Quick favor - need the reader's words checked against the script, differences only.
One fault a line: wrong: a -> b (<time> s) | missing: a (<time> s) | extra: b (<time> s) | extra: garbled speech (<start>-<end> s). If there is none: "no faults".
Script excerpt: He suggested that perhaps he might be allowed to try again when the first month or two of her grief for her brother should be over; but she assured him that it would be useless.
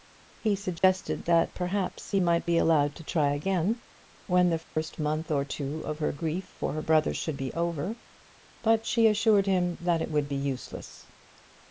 no faults